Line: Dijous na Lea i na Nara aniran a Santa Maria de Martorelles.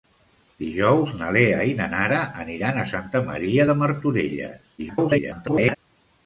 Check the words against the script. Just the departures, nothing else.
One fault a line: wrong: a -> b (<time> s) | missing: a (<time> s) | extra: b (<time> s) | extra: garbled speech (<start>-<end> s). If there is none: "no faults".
extra: garbled speech (4.8-5.8 s)